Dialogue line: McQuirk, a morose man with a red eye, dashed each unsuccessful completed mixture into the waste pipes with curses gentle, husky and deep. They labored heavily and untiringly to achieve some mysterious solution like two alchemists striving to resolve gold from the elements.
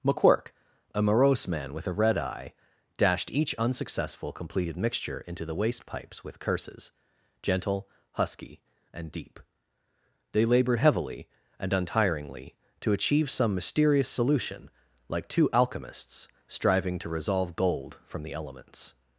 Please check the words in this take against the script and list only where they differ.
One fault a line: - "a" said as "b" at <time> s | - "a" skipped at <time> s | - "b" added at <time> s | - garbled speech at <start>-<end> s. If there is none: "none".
none